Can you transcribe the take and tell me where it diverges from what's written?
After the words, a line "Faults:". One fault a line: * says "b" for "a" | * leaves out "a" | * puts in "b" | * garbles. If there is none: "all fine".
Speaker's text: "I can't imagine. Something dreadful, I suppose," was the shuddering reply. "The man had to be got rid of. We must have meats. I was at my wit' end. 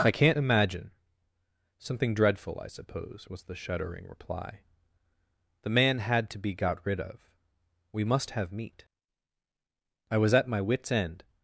"I can't imagine. Something dreadful, I suppose," was the shuddering reply. "The man had to be got rid of. We must have meat. I was at my wits' end.
Faults:
* says "meat" for "meats"
* says "wits" for "wit"